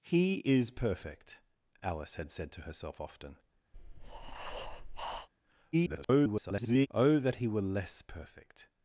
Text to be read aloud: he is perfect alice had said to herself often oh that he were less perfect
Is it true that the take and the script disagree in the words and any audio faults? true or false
true